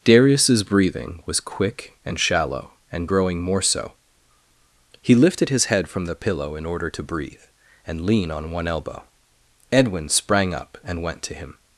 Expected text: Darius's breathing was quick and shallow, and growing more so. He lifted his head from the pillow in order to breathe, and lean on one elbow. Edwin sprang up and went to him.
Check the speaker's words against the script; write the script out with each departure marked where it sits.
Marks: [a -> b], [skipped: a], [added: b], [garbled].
Darius's breathing was quick and shallow, and growing more so. He lifted his head from the pillow in order to breathe, and lean on one elbow. Edwin sprang up and went to him.